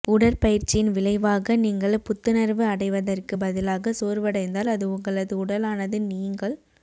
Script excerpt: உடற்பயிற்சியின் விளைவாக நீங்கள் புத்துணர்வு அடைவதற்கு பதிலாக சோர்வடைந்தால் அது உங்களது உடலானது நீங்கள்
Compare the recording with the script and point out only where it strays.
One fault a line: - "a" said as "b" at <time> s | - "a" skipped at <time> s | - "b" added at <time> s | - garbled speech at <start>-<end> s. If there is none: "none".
none